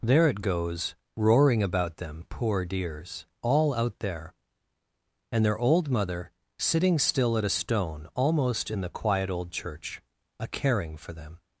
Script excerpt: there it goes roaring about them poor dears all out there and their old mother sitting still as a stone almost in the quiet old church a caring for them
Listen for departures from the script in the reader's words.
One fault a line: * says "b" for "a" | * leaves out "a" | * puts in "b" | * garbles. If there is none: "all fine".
* says "at" for "as"